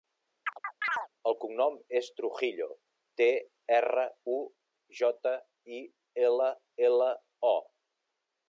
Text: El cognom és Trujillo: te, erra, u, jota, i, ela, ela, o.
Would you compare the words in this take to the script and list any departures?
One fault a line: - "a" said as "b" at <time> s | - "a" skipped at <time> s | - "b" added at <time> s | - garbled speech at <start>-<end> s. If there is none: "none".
none